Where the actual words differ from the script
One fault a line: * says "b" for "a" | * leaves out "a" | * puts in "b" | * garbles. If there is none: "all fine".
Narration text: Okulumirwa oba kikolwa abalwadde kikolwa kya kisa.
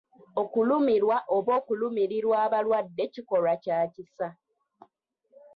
* says "okulumirirwa" for "kikolwa"